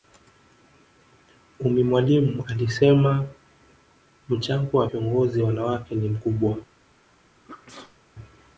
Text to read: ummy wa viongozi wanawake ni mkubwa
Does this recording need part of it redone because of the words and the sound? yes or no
yes